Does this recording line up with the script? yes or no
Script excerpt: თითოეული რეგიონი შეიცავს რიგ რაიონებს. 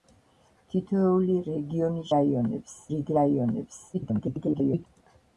no